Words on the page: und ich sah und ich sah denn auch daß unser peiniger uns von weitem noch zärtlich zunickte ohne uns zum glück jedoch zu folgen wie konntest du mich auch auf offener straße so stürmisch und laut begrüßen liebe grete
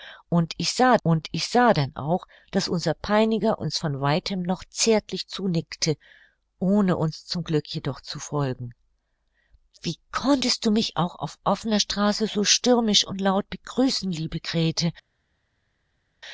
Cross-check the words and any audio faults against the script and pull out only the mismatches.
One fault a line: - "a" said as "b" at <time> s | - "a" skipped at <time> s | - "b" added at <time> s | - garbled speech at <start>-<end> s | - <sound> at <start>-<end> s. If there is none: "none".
none